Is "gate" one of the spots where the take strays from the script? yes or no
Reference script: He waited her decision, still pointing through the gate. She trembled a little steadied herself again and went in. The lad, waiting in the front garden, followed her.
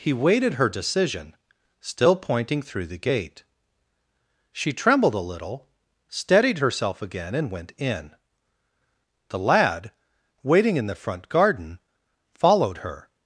no